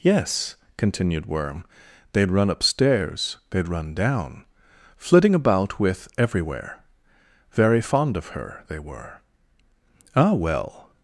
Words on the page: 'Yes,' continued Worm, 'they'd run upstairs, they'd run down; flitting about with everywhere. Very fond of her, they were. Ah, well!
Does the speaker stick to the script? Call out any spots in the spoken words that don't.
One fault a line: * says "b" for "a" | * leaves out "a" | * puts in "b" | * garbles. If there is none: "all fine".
all fine